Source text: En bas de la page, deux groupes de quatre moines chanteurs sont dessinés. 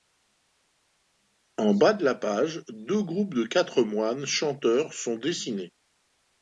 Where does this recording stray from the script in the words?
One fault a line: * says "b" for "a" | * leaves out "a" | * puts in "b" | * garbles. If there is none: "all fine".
all fine